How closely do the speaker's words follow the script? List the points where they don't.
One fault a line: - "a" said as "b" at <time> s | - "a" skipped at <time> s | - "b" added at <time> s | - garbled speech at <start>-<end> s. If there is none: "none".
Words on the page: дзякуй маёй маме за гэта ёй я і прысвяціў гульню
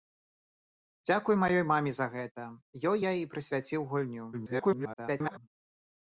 - garbled speech at 4.3-5.4 s